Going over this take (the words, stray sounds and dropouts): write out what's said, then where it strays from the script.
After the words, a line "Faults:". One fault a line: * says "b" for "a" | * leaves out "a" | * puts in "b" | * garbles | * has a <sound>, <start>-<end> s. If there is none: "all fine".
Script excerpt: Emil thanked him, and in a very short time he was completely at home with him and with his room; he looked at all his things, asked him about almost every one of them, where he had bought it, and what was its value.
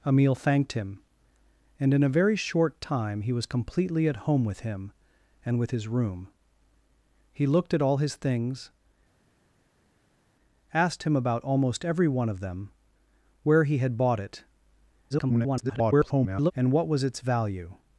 Emil thanked him, and in a very short time he was completely at home with him and with his room; he looked at all his things, asked him about almost every one of them, where he had bought it, [garbled] and what was its value.
Faults:
* garbles